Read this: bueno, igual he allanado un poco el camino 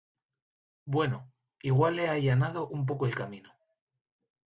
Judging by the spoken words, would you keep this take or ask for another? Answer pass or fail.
pass